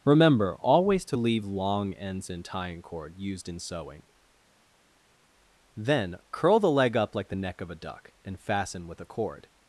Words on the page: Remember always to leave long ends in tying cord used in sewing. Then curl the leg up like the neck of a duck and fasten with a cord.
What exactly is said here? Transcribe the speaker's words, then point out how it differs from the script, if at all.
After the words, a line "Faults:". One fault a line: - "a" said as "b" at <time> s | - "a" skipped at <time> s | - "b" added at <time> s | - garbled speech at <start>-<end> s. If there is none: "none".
Remember always to leave long ends in tying cord used in sewing. Then curl the leg up like the neck of a duck and fasten with a cord.
Faults:
none